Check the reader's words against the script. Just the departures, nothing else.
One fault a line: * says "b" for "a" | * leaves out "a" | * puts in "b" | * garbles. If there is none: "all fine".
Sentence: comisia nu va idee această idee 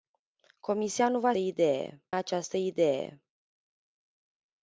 all fine